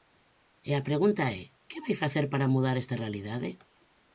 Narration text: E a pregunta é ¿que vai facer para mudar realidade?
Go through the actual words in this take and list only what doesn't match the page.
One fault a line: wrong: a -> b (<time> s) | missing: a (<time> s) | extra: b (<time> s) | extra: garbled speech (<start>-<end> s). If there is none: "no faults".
extra: esta (2.8 s)